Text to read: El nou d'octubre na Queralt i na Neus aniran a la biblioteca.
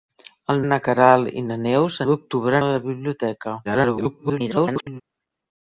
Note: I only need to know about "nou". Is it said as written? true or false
false